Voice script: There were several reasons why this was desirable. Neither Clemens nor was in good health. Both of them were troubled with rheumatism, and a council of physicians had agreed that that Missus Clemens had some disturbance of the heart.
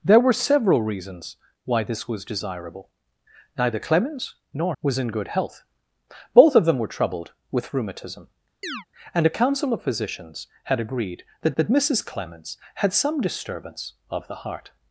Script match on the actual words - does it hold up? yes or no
yes